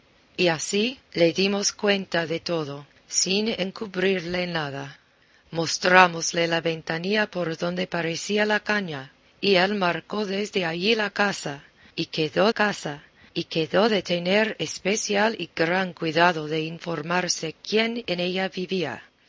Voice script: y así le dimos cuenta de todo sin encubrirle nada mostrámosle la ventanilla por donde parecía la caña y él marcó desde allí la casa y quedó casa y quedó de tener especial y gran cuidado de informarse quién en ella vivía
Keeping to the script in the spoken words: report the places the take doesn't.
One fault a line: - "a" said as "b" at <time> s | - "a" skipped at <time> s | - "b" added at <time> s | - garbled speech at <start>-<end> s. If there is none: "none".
none